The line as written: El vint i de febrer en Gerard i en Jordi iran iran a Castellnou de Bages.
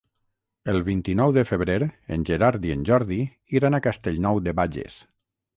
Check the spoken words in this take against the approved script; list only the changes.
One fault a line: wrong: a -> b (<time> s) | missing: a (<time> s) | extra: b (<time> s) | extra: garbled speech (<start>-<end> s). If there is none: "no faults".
extra: nou (1.2 s)
missing: iran (3.8 s)